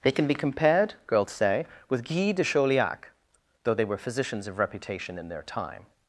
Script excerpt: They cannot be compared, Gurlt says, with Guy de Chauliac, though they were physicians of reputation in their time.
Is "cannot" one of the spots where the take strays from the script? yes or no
yes